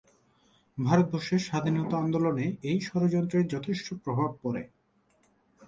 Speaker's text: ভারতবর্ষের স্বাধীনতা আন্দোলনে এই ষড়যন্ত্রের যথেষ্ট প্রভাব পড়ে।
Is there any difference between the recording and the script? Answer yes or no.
no